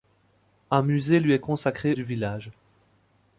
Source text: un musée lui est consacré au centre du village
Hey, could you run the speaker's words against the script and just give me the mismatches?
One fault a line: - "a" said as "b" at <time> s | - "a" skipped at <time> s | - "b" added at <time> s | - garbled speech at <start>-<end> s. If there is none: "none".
- "au centre" skipped at 1.9 s